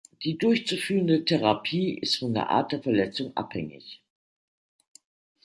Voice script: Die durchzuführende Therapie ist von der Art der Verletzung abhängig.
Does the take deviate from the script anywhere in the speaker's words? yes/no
no